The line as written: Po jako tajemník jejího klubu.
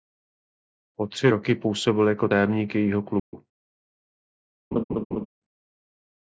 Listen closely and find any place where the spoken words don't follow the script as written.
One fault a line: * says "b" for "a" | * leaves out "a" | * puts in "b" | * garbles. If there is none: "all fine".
* puts in "tři roky působil"